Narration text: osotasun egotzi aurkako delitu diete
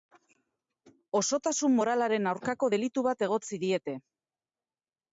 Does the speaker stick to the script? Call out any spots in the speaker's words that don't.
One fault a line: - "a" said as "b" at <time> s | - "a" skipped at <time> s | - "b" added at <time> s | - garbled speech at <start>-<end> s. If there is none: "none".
- "egotzi" said as "moralaren" at 1.8 s
- "bat egotzi" added at 3.1 s